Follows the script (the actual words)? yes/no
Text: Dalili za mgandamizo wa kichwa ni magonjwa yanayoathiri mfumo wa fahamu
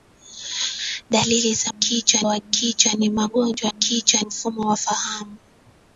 no